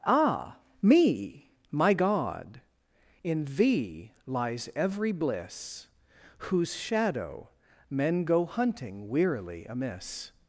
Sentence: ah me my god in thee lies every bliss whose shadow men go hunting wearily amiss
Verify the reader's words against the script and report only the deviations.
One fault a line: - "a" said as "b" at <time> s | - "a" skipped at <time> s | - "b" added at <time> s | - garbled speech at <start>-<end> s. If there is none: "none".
none